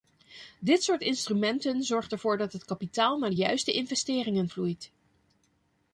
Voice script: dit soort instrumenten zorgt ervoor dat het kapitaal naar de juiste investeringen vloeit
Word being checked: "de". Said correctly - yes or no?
yes